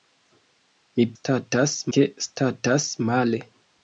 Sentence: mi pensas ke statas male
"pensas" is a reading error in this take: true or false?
true